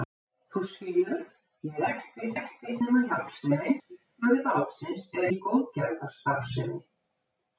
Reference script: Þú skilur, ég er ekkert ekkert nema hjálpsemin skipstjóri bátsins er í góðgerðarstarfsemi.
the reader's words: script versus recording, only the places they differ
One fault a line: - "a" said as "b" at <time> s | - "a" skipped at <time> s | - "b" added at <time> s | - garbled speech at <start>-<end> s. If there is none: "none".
none